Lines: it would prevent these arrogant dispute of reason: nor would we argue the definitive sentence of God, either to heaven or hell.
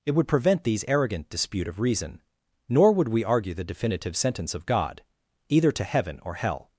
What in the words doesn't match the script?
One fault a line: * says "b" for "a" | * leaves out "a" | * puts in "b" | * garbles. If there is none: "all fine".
all fine